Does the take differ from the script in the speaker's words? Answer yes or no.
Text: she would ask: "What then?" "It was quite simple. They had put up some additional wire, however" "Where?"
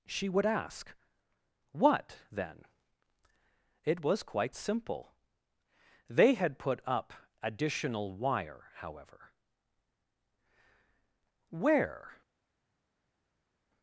yes